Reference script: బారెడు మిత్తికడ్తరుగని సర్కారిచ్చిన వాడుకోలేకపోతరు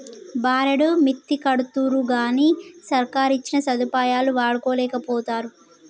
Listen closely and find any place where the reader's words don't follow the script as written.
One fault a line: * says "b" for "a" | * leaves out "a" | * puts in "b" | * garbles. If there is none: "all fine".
* puts in "సదుపాయాలు"